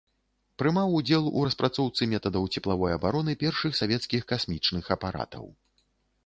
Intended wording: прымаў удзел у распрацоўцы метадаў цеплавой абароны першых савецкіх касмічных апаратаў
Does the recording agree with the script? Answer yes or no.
yes